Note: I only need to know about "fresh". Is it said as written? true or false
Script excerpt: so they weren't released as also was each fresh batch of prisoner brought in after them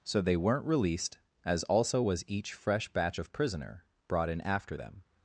true